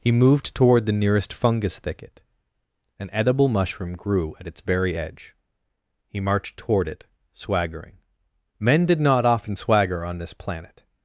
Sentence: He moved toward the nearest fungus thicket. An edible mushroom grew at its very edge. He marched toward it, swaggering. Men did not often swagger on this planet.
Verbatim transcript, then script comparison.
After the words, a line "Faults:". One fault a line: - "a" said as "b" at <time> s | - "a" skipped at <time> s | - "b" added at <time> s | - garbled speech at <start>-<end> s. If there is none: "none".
He moved toward the nearest fungus thicket. An edible mushroom grew at its very edge. He marched toward it, swaggering. Men did not often swagger on this planet.
Faults:
none